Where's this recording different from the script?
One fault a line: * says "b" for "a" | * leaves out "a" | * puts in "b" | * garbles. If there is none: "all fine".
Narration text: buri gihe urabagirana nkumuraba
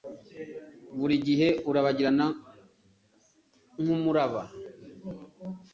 all fine